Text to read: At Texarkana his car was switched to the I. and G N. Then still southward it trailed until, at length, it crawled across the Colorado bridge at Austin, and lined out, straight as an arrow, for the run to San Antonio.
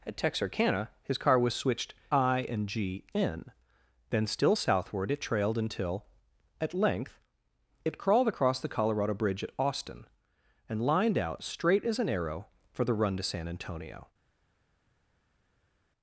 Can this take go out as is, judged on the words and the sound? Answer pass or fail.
fail